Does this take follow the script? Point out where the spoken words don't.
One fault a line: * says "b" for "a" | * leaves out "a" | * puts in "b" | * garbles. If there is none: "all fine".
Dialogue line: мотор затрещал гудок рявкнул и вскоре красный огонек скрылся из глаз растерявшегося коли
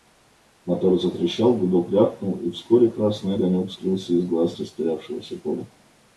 all fine